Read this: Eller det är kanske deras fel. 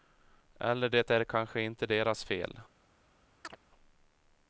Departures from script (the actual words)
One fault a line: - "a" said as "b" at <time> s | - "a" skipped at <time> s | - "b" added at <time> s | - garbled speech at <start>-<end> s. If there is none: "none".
- "inte" added at 1.6 s